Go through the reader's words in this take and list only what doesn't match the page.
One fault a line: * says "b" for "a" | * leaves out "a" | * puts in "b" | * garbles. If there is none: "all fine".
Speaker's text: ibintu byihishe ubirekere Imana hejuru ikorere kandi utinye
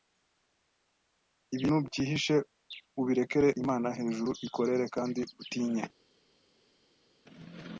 all fine